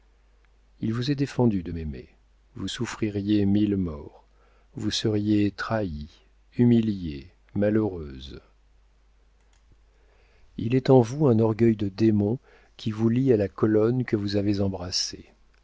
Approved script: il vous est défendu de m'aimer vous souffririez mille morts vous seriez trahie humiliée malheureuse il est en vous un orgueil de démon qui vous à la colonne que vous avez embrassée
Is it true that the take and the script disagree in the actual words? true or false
true